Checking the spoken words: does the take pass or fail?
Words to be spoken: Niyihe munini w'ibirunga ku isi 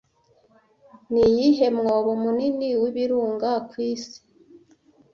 fail